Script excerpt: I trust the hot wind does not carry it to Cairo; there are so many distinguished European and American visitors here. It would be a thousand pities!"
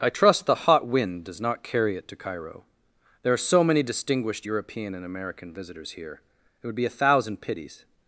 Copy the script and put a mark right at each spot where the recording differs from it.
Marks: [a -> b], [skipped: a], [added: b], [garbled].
I trust the hot wind does not carry it to Cairo; there are so many distinguished European and American visitors here. It would be a thousand pities!"